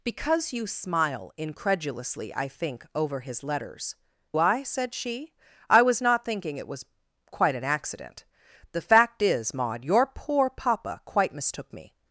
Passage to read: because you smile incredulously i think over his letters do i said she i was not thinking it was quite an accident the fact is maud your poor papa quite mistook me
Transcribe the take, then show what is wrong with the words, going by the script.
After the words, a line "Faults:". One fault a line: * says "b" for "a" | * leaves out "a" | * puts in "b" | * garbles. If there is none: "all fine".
because you smile incredulously i think over his letters i said she i was not thinking it was quite an accident the fact is maud your poor papa quite mistook me
Faults:
* leaves out "do"